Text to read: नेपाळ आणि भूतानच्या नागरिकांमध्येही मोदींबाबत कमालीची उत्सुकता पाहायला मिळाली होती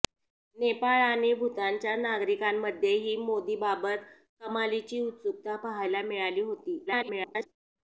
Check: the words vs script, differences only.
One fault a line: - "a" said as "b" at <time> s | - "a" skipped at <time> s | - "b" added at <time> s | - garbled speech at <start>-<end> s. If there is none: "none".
- garbled speech at 6.9-7.5 s